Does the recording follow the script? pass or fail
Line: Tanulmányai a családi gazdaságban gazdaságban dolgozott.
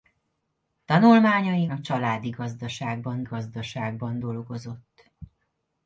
pass